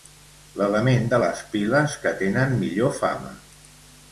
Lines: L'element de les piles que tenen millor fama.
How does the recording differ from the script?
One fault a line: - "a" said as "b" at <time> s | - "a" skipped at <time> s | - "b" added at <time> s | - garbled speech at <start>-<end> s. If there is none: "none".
none